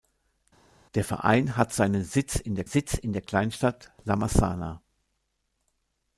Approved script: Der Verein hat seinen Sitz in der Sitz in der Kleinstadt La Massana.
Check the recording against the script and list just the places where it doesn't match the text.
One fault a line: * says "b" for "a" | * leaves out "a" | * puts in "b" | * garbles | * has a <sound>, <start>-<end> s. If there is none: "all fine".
all fine